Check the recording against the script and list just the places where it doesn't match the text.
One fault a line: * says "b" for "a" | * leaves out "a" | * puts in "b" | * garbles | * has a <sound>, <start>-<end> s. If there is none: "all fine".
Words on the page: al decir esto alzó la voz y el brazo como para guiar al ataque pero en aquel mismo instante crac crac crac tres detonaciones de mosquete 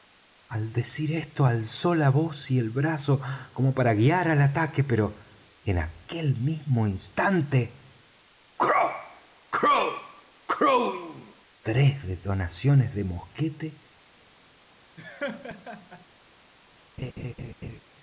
* has a laugh, 15.0-16.1 s
* has a laugh, 17.0-17.8 s